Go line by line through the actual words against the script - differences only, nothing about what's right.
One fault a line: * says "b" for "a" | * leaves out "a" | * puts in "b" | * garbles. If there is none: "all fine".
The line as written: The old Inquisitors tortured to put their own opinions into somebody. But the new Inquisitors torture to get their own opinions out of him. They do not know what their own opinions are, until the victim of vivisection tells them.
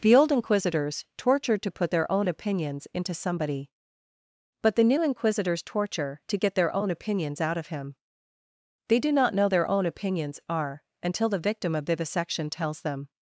* leaves out "what"